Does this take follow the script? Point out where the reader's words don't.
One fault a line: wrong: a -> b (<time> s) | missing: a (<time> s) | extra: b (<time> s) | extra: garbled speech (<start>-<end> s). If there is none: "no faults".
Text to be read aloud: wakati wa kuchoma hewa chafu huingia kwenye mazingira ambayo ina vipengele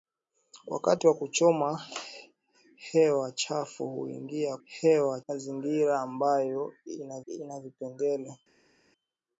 wrong: kwenye -> hewa (4.6 s)
extra: ina (7.3 s)